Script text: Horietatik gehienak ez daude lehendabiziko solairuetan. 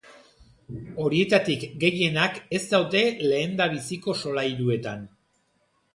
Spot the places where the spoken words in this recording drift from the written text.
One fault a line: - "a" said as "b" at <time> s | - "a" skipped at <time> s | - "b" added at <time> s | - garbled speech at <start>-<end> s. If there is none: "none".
none